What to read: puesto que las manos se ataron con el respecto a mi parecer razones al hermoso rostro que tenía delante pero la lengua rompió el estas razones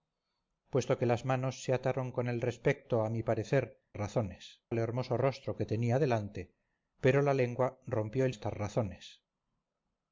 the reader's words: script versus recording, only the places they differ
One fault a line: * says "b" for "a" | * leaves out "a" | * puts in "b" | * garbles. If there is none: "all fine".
all fine